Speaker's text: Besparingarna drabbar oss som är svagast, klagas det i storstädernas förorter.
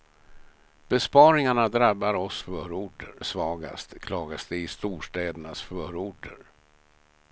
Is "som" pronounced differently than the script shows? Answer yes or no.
yes